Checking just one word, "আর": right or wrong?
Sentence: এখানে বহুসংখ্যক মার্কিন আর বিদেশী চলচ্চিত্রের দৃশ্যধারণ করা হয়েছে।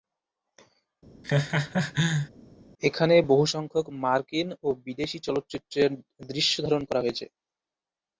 wrong